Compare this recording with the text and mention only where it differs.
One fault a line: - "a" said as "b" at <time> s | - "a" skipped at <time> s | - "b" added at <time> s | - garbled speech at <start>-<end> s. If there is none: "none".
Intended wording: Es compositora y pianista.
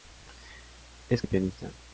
- "compositora" skipped at 1.2 s